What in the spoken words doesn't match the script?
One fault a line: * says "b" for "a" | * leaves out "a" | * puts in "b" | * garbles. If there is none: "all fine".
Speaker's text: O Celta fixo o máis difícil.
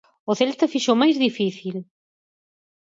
all fine